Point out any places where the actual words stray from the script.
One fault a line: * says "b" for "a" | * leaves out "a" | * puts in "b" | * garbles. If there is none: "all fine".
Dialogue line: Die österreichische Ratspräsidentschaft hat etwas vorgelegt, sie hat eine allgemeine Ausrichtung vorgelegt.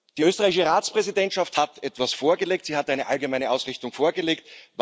all fine